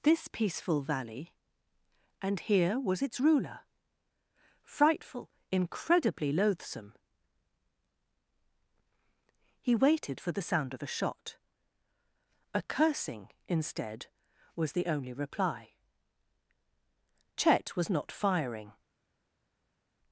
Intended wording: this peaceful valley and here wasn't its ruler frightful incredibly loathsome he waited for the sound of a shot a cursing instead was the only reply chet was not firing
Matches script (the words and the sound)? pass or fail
fail